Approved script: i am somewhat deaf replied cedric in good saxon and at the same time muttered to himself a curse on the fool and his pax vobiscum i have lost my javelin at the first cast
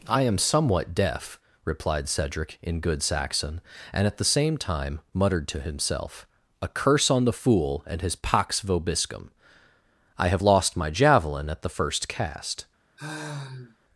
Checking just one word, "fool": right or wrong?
right